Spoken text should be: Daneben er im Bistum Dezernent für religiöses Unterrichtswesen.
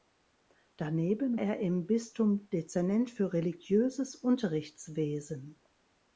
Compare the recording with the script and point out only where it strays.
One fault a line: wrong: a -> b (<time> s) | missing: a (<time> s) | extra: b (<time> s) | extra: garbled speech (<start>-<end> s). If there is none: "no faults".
no faults